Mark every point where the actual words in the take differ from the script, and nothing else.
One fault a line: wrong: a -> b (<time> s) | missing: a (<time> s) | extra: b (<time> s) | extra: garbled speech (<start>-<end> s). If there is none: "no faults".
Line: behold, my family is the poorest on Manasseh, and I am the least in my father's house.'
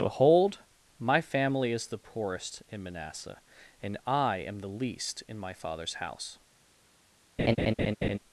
wrong: on -> in (2.7 s)